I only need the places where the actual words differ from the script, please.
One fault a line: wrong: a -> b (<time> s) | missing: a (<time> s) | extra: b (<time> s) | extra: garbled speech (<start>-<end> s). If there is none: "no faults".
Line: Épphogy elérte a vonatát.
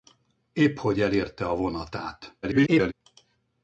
extra: garbled speech (2.4-2.9 s)